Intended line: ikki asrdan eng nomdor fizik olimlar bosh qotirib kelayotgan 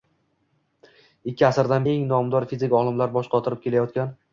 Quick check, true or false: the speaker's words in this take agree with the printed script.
true